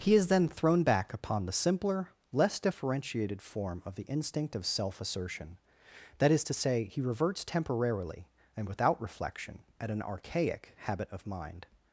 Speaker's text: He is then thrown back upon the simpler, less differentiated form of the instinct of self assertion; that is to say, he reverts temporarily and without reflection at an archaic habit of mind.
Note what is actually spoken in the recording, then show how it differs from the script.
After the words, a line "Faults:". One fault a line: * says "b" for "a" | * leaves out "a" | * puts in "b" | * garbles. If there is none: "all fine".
He is then thrown back upon the simpler, less differentiated form of the instinct of self assertion; that is to say, he reverts temporarily and without reflection at an archaic habit of mind.
Faults:
all fine